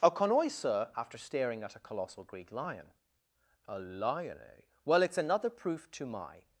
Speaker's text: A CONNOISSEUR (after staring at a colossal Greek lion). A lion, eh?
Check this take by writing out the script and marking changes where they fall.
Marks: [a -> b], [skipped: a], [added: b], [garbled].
A CONNOISSEUR (after staring at a colossal Greek lion). A lion, eh? [added: Well it's another proof to my]